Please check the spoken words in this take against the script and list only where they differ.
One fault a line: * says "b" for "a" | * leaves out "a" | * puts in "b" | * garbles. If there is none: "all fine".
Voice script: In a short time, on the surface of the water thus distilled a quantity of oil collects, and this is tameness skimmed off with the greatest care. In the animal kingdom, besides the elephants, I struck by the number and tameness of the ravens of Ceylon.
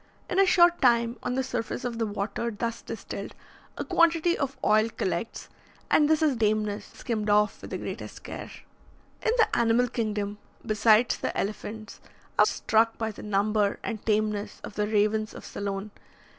all fine